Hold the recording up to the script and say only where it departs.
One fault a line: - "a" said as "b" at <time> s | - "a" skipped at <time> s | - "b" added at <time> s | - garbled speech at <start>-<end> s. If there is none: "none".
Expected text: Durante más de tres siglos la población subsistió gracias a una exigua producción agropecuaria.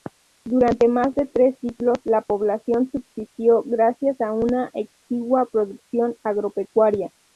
none